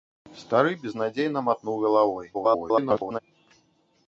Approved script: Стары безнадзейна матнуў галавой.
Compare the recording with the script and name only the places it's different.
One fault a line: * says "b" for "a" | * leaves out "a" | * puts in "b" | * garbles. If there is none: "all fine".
* garbles